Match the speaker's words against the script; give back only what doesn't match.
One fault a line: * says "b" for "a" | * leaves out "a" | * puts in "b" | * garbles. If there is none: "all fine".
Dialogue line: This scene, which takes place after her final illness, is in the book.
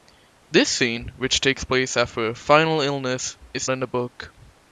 all fine